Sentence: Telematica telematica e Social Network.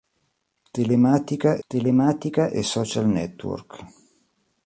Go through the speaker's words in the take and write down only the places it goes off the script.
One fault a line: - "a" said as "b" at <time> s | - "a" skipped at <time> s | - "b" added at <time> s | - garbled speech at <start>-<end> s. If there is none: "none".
none